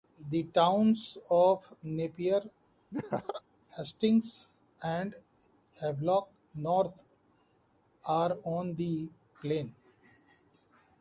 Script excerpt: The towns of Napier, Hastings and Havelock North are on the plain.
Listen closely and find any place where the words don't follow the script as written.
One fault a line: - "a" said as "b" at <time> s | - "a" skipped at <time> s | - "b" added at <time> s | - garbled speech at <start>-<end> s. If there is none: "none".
none